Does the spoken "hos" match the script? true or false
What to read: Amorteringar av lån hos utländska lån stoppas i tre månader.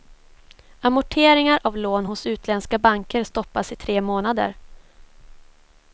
true